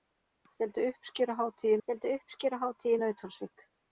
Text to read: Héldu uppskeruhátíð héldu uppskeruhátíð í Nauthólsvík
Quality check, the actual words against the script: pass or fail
pass